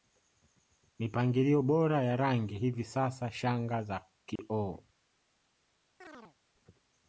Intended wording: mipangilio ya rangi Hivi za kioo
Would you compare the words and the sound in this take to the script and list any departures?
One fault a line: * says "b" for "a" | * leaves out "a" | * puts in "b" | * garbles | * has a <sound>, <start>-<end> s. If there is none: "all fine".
* puts in "bora"
* puts in "sasa shanga"
* has a dropout, 4.4-4.4 s
* has a chirp, 6.0-6.4 s